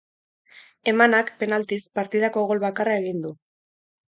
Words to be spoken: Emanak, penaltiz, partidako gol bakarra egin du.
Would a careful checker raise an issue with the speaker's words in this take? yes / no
no